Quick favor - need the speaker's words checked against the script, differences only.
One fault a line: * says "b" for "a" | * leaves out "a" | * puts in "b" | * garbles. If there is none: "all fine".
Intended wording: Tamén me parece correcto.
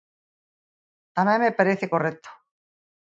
all fine